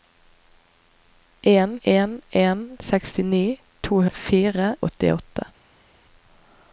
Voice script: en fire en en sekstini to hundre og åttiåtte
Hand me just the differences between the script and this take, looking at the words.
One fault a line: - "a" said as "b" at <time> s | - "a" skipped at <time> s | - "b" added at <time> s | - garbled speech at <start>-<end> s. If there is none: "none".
- "fire" skipped at 1.8 s
- "hundre" said as "fire" at 4.1 s